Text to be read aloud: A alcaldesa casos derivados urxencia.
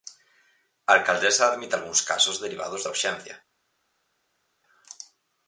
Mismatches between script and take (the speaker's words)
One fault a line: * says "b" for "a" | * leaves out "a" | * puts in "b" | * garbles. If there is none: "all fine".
* puts in "admite algúns"
* puts in "da"